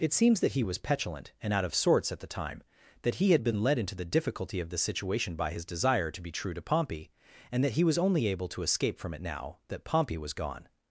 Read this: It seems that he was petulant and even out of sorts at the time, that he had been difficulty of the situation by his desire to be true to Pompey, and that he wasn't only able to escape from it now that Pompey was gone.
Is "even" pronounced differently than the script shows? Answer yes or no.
yes